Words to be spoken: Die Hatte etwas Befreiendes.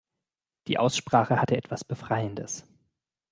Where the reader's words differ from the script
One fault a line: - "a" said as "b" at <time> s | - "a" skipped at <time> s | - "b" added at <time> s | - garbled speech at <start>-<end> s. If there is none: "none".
- "Aussprache" added at 0.8 s